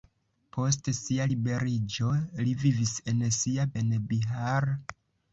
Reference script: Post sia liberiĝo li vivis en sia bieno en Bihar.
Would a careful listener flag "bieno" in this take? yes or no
yes